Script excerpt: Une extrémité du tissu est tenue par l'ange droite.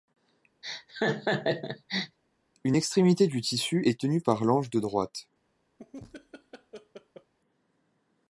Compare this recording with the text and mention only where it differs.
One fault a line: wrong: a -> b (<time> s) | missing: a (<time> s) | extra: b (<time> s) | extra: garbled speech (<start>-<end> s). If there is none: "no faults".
extra: de (4.7 s)